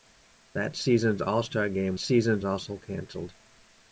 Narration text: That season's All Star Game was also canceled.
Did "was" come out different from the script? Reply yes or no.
yes